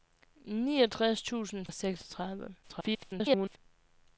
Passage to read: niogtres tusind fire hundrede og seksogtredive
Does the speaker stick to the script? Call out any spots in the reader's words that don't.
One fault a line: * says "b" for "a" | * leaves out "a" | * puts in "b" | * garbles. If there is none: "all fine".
* leaves out "fire hundrede"
* garbles